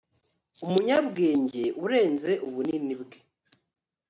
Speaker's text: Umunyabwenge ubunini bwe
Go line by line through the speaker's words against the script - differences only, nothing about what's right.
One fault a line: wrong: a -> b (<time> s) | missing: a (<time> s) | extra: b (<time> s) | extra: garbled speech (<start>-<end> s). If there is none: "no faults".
extra: urenze (1.8 s)